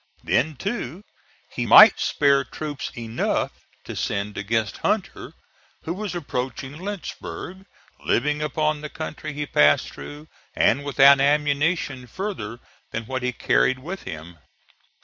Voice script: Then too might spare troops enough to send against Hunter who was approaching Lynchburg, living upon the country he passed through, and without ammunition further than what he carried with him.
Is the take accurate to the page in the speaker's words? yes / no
no